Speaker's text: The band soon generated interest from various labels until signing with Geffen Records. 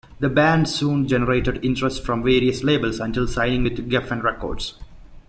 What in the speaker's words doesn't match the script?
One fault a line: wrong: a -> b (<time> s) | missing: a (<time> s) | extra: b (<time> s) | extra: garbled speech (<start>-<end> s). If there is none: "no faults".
no faults